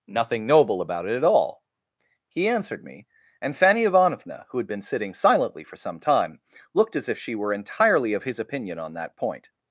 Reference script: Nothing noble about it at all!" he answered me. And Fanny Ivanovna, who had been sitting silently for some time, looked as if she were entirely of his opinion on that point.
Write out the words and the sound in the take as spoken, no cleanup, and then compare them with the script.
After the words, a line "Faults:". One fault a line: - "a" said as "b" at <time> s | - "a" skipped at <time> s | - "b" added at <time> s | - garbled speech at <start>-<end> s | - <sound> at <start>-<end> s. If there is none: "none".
Nothing noble about it at all!" he answered me. And Fanny Ivanovna, who had been sitting silently for some time, looked as if she were entirely of his opinion on that point.
Faults:
none